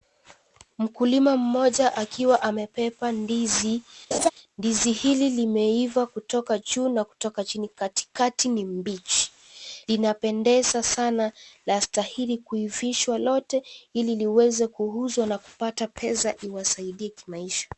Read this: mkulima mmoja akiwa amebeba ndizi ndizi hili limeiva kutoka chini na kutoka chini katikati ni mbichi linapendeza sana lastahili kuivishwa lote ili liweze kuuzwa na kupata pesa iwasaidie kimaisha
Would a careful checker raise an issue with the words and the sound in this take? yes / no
yes